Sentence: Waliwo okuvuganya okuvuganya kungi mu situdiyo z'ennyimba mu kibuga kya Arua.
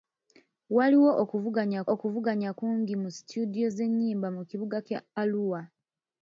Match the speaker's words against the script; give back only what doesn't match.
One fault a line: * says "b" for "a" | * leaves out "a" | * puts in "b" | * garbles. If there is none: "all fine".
all fine